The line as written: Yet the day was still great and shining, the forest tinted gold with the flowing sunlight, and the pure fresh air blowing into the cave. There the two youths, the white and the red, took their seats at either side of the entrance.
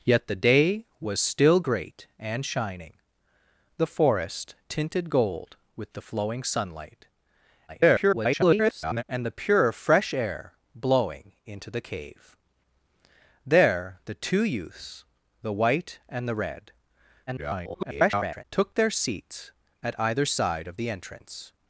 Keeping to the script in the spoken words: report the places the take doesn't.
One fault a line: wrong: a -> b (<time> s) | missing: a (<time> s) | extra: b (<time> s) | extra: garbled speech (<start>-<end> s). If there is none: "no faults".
extra: garbled speech (7.7-9.0 s)
extra: garbled speech (17.3-18.4 s)